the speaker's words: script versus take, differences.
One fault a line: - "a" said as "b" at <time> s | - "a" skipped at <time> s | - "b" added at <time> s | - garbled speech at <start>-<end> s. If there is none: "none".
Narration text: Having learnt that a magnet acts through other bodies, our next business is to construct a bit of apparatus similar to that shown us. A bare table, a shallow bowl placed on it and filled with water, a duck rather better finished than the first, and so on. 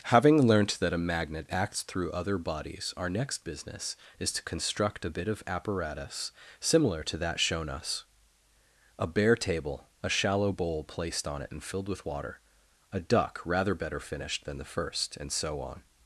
none